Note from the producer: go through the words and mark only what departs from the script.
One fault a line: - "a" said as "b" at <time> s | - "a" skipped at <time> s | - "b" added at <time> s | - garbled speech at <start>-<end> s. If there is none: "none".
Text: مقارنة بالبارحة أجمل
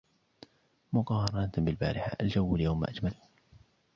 - "الجو اليوم" added at 2.2 s